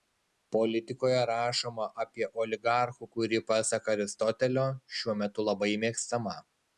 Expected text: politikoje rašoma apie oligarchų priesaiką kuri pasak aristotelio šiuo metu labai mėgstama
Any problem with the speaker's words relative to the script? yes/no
yes